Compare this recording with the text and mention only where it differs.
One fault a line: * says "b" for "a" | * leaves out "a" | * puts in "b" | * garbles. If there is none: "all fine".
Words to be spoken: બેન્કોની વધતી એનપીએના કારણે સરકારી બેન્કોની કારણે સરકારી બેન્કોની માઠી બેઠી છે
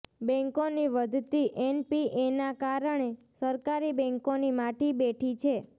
* leaves out "કારણે સરકારી બેન્કોની"